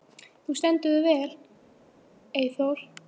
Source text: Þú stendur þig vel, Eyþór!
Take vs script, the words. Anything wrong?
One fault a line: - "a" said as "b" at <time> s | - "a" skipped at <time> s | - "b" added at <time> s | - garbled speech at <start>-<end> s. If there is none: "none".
none